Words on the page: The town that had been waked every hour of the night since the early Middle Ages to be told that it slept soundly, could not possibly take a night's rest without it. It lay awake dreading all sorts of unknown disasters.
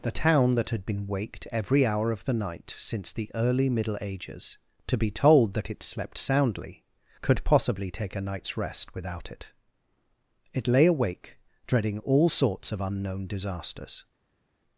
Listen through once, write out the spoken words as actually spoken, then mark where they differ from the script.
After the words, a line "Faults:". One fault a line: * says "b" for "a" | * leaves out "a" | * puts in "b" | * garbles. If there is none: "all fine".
The town that had been waked every hour of the night since the early Middle Ages to be told that it slept soundly, could possibly take a night's rest without it. It lay awake dreading all sorts of unknown disasters.
Faults:
* leaves out "not"